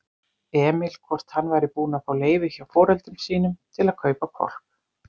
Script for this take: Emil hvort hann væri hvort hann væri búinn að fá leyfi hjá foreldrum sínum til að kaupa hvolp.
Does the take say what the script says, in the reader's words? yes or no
no